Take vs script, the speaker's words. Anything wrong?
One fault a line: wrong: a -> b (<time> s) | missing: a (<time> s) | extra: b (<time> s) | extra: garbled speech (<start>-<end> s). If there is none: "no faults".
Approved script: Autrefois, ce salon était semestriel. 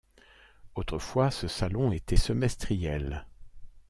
no faults